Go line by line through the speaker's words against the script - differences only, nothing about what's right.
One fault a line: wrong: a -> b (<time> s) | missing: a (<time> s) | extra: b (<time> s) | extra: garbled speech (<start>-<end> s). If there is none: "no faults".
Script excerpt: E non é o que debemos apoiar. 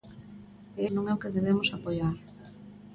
no faults